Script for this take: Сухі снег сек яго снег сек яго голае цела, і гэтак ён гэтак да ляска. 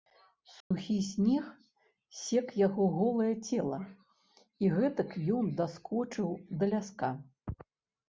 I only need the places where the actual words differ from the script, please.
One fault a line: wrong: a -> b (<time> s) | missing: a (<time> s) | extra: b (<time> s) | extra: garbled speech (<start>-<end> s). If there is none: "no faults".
missing: снег сек яго (2.9 s)
wrong: гэтак -> даскочыў (5.6 s)